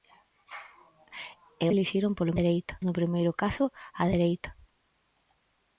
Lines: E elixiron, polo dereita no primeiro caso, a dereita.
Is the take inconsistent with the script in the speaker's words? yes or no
no